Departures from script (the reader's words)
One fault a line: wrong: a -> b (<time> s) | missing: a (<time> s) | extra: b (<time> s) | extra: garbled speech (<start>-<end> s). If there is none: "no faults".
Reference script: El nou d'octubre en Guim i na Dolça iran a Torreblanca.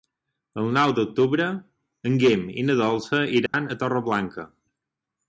no faults